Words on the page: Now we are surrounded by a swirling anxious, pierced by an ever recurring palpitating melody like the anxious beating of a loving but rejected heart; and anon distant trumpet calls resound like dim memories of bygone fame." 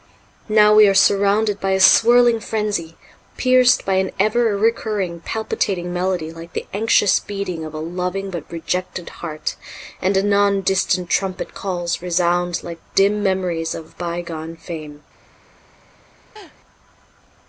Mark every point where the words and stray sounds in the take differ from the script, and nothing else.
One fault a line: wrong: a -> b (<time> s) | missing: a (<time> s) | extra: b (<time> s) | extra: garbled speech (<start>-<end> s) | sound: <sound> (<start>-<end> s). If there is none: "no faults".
wrong: anxious -> frenzy (2.4 s)
sound: laugh (16.4-16.6 s)